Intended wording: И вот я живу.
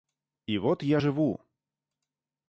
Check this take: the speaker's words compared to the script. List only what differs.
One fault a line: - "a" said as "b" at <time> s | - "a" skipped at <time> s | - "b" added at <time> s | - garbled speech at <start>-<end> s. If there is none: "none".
none